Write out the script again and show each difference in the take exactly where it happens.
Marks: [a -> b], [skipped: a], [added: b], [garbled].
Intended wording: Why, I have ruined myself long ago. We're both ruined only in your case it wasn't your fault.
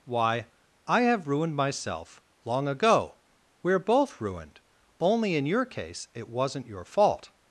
Why, I have ruined myself long ago. We're both ruined only in your case it wasn't your fault.